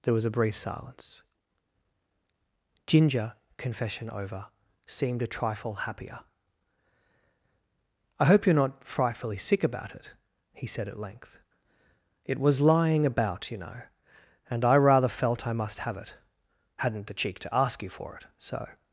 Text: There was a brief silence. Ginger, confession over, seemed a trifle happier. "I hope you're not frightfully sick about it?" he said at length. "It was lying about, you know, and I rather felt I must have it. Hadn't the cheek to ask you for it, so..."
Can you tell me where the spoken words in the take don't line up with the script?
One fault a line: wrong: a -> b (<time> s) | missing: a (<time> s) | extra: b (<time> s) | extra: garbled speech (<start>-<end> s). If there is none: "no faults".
no faults